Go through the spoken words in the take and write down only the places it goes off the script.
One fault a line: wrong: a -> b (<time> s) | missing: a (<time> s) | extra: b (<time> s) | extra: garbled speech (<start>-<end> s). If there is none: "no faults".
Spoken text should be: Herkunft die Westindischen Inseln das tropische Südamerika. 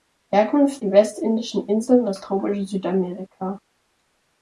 no faults